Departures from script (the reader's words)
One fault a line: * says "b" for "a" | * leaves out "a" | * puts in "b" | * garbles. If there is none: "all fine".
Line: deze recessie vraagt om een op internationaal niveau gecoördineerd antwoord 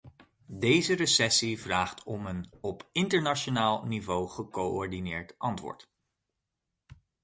all fine